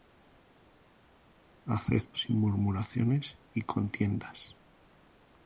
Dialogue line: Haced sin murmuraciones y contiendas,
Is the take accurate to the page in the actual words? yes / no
yes